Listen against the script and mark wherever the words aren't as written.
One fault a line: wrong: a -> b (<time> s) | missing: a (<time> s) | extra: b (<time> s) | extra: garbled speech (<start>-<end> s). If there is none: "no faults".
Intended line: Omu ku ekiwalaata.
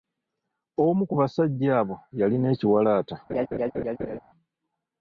extra: basajja abo yalina (1.2 s)